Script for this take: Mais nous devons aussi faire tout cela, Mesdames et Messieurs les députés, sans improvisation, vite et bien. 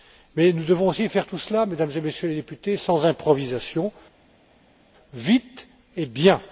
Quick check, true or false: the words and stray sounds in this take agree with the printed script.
true